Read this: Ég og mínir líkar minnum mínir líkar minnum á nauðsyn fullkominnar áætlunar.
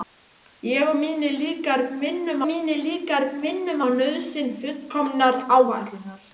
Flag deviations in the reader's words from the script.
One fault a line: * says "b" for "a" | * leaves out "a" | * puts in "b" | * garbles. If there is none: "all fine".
all fine